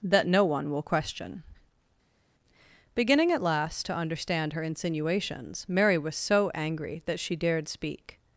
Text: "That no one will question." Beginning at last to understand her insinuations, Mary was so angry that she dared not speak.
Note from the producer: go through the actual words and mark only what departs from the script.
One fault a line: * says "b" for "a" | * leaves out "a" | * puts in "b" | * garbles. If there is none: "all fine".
* leaves out "not"